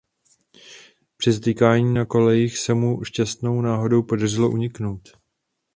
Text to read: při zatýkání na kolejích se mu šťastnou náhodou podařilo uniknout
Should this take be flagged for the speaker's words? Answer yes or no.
no